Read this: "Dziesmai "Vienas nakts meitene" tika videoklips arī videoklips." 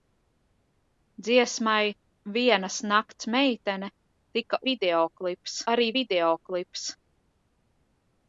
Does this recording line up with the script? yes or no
yes